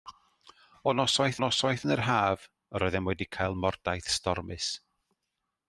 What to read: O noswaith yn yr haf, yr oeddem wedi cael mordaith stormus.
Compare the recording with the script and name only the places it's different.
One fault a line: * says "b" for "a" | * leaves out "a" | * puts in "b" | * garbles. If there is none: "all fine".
* puts in "noswaith"